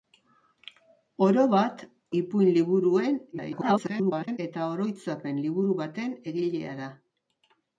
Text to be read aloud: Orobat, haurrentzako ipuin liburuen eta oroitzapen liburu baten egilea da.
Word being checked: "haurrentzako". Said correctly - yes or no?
no